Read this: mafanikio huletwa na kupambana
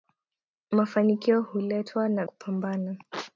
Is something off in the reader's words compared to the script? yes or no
no